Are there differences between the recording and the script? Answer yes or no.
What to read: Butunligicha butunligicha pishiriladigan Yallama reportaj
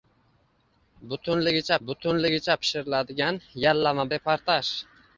no